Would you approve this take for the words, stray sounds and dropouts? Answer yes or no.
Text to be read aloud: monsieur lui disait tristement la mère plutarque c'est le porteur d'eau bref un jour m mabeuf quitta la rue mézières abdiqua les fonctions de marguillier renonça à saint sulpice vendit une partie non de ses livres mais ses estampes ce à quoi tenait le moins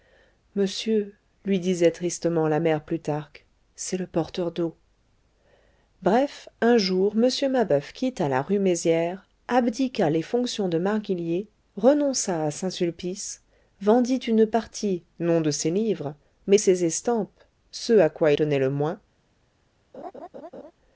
no